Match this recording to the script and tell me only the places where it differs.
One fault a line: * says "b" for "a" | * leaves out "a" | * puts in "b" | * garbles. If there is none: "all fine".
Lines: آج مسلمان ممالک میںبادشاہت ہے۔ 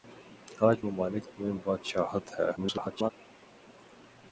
* leaves out "مسلمان"
* garbles